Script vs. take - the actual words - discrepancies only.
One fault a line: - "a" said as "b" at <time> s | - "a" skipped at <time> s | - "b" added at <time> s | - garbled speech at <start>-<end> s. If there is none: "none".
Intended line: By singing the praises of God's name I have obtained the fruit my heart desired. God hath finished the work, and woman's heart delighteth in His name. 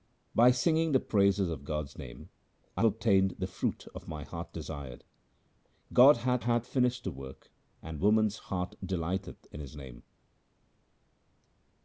- "have" skipped at 2.9 s
- "hath" added at 6.4 s